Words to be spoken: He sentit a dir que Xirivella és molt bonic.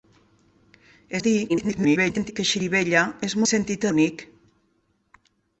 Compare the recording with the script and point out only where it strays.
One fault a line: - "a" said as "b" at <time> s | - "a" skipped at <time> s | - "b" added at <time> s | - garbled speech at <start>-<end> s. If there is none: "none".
- "sentit" skipped at 1.2 s
- garbled speech at 1.5-2.3 s
- "molt" said as "sentit" at 3.5 s